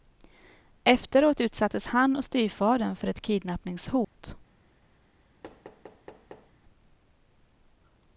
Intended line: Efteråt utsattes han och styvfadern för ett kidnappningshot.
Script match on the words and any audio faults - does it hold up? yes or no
no